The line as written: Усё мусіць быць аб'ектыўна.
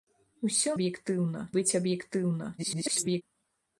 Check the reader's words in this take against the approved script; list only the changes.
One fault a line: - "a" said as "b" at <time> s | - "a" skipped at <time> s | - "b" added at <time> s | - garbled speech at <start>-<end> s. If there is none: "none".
- "мусіць" said as "аб'ектыўна" at 0.8 s
- garbled speech at 2.6-3.2 s